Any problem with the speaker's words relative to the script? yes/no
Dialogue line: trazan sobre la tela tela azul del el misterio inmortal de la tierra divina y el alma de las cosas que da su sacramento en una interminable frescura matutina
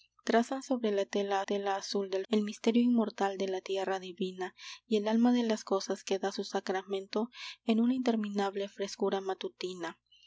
no